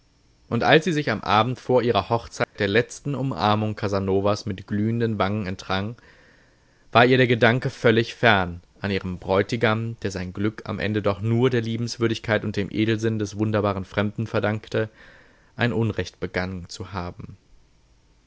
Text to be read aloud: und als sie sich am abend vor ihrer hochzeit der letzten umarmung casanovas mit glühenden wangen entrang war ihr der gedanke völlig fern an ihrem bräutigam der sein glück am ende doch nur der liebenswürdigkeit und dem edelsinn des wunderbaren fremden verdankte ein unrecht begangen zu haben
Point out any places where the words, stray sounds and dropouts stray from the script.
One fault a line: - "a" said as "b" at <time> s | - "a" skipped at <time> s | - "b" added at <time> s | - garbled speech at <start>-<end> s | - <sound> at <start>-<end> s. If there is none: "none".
- dropout at 2.4-2.6 s